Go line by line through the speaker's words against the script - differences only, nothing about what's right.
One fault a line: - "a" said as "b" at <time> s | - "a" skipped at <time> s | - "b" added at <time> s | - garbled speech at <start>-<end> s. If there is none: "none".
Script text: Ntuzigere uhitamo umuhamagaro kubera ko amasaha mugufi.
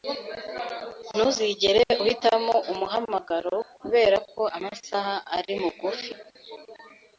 - "ari" added at 5.4 s